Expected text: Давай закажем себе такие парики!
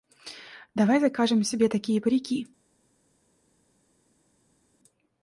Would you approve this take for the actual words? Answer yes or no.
yes